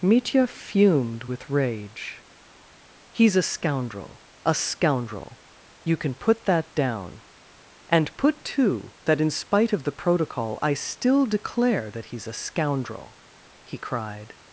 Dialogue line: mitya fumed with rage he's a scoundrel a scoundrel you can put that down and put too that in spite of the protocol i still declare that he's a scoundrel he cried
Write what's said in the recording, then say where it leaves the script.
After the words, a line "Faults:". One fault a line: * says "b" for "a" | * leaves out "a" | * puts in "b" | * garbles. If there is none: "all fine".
mitya fumed with rage he's a scoundrel a scoundrel you can put that down and put too that in spite of the protocol i still declare that he's a scoundrel he cried
Faults:
all fine